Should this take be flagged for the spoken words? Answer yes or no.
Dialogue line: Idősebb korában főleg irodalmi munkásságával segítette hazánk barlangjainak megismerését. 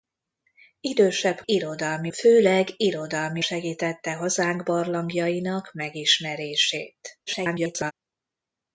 yes